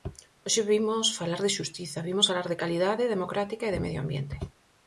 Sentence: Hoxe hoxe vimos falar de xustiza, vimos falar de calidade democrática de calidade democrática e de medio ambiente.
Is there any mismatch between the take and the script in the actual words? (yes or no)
yes